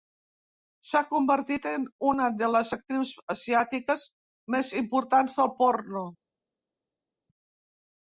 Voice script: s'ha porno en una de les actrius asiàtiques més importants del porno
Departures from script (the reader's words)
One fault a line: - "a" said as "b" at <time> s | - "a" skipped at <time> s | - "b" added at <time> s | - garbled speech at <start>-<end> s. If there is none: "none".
- "porno" said as "convertit" at 1.1 s